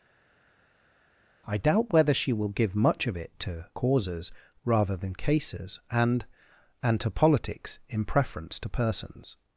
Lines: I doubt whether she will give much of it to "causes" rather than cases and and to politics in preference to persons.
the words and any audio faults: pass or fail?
pass